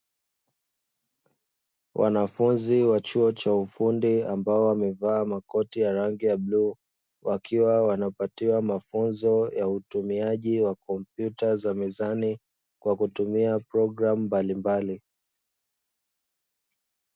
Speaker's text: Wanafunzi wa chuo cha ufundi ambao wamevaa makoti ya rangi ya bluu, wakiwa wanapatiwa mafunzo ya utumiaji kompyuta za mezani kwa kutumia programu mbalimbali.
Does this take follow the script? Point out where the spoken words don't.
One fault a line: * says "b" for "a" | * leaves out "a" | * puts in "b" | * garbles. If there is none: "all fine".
* puts in "wa"